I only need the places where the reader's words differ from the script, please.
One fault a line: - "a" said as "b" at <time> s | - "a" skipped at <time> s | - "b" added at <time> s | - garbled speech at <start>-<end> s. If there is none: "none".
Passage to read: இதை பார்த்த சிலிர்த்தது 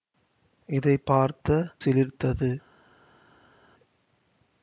none